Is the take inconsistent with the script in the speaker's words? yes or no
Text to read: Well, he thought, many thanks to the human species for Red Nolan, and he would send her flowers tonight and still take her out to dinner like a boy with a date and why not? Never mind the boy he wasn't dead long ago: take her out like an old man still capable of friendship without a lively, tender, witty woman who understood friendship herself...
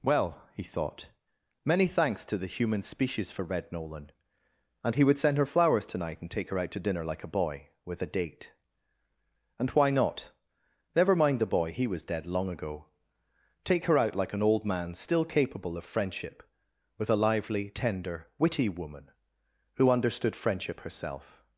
yes